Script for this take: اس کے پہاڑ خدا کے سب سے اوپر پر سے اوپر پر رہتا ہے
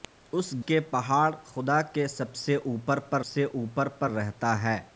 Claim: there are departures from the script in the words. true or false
false